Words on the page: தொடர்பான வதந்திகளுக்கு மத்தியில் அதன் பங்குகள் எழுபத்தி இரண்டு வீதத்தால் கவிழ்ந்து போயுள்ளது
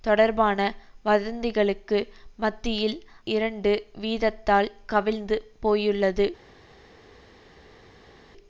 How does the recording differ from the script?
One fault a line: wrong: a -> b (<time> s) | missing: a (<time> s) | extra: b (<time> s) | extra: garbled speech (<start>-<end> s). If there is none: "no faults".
missing: அதன் பங்குகள் எழுபத்தி (3.0 s)